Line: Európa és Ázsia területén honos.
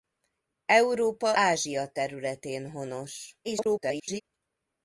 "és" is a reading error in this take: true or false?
true